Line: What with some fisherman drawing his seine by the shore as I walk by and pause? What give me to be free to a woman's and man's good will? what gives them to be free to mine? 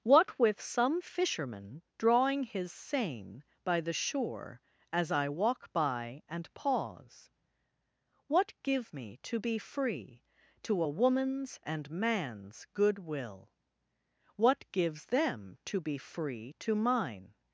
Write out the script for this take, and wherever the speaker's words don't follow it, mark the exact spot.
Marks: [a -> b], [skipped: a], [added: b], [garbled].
What with some fisherman drawing his seine by the shore as I walk by and pause? What give me to be free to a woman's and man's good will? what gives them to be free to mine?